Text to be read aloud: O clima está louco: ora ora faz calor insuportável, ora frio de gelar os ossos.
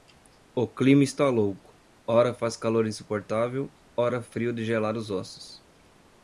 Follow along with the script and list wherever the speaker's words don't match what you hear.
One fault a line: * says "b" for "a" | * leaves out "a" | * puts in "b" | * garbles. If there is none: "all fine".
* leaves out "ora"